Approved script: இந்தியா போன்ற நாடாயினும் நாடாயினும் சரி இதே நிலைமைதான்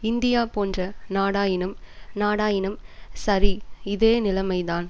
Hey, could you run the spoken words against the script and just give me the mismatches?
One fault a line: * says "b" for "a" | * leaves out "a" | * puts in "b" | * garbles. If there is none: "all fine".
all fine